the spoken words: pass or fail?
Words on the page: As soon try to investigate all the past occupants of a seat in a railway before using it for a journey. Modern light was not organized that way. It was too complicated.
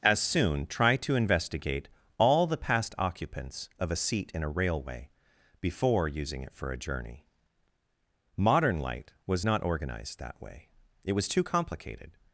pass